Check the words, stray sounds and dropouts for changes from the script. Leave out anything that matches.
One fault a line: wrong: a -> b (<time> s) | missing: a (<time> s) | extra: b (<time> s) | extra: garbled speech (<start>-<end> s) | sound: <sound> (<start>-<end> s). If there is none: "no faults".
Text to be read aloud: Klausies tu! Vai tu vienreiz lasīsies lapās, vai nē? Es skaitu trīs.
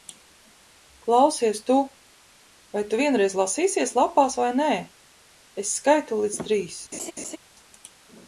extra: līdz (6.2 s)
sound: laugh (6.9-7.4 s)